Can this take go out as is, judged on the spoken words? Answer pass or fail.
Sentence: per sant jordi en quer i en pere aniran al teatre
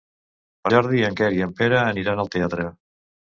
fail